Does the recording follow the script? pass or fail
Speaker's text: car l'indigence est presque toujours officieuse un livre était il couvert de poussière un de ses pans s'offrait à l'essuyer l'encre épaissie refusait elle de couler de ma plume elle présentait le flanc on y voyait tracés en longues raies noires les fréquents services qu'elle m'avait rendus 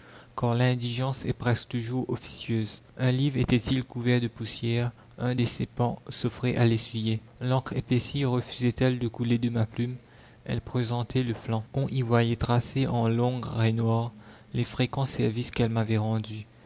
pass